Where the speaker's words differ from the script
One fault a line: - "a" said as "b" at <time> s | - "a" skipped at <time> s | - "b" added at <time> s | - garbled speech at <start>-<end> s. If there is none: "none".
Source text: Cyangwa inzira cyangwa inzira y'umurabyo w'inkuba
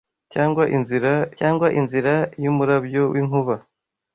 none